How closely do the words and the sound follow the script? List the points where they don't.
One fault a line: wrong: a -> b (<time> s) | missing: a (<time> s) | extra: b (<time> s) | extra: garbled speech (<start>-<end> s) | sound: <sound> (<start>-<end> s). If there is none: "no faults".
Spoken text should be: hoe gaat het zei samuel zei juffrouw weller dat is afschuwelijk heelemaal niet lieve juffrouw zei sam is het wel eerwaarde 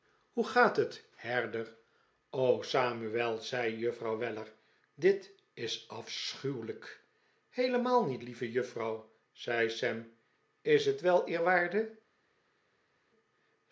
wrong: zei -> herder (1.1 s)
wrong: dat -> dit (4.9 s)